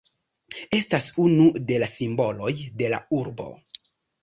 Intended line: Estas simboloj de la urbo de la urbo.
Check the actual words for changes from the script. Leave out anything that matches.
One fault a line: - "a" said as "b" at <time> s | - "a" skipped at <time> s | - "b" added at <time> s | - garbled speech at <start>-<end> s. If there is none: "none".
- "simboloj" said as "unu" at 1.2 s
- "urbo" said as "simboloj" at 2.0 s